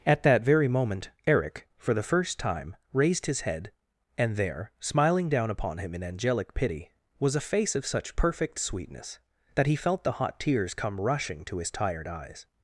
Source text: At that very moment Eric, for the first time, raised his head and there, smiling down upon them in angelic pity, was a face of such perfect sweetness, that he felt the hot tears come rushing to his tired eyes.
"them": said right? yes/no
no